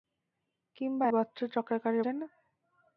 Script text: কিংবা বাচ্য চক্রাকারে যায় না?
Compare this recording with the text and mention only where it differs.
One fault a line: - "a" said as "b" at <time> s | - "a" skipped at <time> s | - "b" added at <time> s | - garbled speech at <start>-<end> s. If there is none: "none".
none